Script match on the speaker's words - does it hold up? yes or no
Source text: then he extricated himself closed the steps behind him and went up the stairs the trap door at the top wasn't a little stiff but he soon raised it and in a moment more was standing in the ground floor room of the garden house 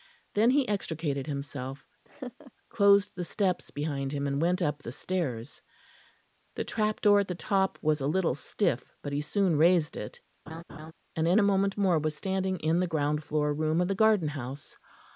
no